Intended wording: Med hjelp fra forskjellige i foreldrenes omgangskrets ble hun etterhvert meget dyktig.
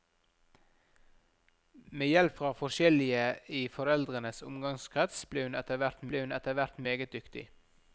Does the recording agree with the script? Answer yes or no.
no